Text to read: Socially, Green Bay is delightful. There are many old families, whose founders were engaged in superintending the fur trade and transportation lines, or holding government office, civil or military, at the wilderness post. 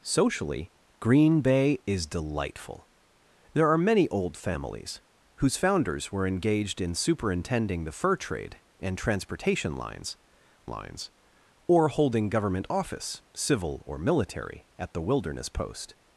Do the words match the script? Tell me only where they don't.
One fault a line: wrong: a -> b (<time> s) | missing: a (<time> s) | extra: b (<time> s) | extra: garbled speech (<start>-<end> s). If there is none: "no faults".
extra: lines (10.7 s)